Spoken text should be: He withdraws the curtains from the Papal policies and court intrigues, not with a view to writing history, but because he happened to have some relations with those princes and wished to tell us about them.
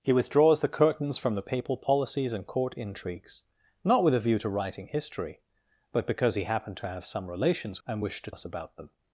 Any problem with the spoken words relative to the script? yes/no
yes